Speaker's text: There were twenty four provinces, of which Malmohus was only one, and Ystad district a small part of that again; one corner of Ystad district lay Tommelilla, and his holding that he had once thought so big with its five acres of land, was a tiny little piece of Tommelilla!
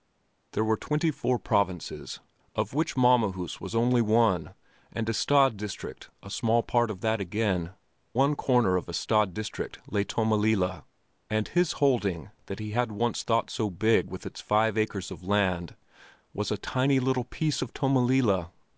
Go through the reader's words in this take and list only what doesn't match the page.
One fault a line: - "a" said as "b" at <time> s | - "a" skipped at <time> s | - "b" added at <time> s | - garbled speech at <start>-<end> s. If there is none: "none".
none